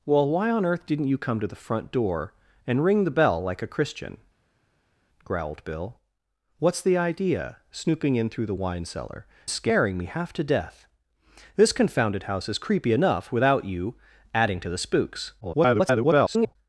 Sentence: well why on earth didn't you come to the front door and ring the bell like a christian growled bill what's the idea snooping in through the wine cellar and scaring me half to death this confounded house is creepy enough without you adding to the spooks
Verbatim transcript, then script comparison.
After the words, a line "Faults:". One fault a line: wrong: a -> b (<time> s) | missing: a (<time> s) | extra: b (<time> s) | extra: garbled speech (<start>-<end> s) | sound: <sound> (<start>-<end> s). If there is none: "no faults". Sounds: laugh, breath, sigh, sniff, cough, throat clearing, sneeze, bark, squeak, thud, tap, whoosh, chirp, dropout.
well why on earth didn't you come to the front door and ring the bell like a christian growled bill what's the idea snooping in through the wine cellar scaring me half to death this confounded house is creepy enough without you adding to the spooks [garbled]
Faults:
missing: and (9.3 s)
extra: garbled speech (15.4-16.6 s)